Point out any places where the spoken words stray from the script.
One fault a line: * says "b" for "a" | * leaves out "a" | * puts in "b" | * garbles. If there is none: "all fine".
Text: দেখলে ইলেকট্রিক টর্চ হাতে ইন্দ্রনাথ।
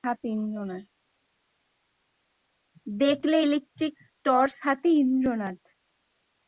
all fine